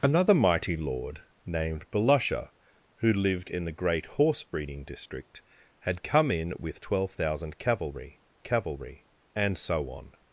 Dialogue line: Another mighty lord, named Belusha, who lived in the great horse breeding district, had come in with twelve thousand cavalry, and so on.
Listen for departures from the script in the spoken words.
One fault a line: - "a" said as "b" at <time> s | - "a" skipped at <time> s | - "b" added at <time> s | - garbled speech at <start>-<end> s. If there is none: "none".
- "cavalry" added at 8.4 s